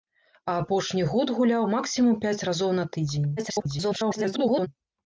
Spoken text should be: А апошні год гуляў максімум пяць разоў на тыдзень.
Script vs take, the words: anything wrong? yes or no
yes